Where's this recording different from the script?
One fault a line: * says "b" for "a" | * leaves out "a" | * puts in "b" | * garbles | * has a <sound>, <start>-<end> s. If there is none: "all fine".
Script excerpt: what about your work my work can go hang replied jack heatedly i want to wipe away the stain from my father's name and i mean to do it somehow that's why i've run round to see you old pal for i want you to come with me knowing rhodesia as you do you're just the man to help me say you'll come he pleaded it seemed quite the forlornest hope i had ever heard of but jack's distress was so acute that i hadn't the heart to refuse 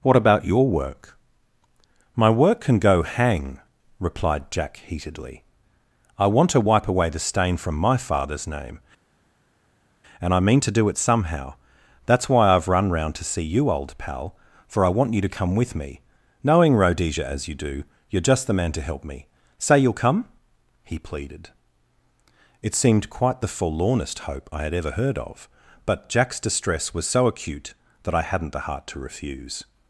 all fine